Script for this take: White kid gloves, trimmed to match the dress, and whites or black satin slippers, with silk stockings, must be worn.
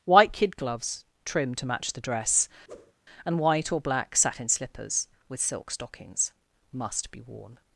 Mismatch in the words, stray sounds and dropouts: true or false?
true